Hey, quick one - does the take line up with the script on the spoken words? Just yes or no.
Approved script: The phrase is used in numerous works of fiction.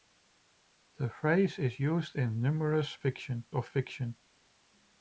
no